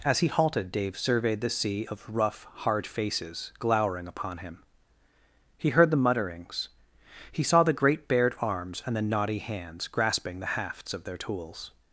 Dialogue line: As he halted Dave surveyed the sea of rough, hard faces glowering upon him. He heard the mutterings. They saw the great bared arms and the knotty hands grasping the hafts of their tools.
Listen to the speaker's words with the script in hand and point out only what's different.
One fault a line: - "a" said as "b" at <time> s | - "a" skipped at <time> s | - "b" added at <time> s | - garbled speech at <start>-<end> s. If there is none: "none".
- "They" said as "He" at 7.3 s